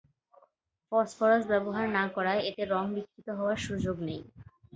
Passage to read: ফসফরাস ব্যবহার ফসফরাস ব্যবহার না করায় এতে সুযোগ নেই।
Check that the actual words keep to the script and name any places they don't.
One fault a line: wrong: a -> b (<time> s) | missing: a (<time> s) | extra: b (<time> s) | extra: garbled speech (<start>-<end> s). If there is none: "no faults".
missing: ফসফরাস ব্যবহার (1.9 s)
extra: রং বিকৃত হওয়ার (2.7 s)